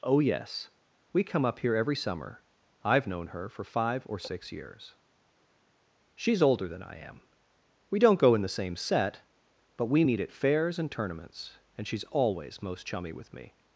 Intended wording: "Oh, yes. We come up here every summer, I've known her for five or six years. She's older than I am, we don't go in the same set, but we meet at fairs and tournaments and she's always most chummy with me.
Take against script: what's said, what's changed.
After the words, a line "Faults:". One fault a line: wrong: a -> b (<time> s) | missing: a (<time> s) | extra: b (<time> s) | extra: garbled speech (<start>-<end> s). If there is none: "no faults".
"Oh, yes. We come up here every summer, I've known her for five or six years. She's older than I am, we don't go in the same set, but we meet at fairs and tournaments and she's always most chummy with me.
Faults:
no faults